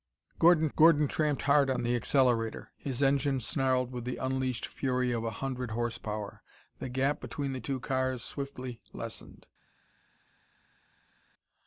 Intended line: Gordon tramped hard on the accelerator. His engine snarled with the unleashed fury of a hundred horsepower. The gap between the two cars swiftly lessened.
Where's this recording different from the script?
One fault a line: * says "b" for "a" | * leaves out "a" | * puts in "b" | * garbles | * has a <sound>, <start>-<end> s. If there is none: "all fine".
* puts in "gordon"